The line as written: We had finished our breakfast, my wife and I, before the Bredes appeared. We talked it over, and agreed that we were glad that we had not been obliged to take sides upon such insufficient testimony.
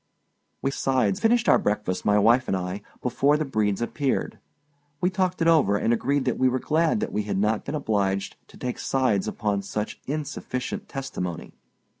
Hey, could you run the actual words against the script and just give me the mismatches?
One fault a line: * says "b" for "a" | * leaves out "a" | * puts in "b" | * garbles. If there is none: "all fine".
* says "sides" for "had"